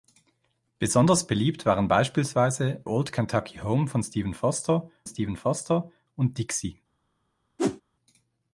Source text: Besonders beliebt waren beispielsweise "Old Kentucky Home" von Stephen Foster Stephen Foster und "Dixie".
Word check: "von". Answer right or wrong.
right